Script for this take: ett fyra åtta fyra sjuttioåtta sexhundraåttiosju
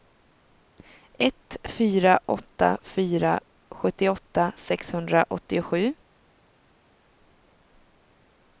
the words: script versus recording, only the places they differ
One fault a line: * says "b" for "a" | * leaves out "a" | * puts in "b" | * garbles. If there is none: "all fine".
all fine